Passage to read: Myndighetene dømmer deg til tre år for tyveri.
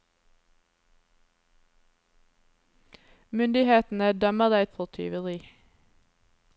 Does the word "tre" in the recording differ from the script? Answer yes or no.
yes